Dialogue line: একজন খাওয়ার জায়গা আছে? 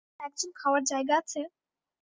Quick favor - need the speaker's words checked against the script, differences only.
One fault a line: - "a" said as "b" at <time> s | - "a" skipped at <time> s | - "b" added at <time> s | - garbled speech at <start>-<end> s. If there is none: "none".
none